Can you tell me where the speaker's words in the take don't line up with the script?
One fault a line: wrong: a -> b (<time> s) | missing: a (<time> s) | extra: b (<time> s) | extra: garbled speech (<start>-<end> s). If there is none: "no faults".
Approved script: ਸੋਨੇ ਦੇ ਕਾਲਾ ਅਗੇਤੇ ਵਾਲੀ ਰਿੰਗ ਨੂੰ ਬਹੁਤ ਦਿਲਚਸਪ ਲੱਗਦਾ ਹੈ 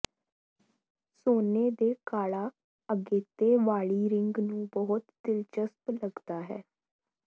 no faults